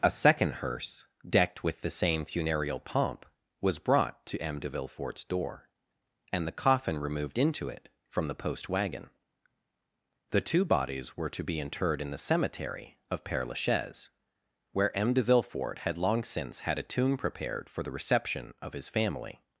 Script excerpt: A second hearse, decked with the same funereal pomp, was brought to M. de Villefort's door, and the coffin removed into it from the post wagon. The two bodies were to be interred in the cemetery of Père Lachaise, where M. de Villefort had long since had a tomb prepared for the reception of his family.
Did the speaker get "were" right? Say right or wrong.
right